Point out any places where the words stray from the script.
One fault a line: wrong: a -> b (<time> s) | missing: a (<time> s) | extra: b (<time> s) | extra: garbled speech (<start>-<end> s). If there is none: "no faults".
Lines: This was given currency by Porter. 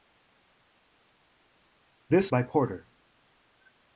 missing: was given currency (2.3 s)